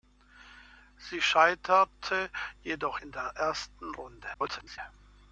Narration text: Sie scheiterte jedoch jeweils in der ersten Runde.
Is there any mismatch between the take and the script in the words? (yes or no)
yes